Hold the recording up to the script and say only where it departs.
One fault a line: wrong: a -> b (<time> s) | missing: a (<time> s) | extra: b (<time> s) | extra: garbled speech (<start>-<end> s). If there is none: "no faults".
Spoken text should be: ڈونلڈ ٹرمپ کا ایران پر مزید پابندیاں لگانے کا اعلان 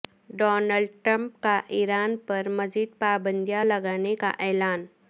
no faults